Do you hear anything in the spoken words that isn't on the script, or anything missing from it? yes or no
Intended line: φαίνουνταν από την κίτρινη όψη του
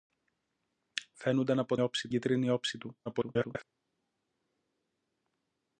yes